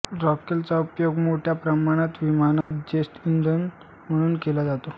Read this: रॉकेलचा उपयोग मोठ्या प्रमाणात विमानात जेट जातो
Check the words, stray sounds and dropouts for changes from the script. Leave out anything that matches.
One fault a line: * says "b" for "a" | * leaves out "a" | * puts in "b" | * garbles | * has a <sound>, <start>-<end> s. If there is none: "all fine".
* has a dropout, 2.6-2.7 s
* puts in "इंधन म्हणून केला"